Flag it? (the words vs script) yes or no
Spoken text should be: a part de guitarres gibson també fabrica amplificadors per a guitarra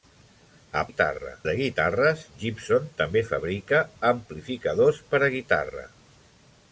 yes